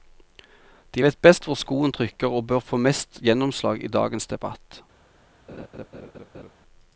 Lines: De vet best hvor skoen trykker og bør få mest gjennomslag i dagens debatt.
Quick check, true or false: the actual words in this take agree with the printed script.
true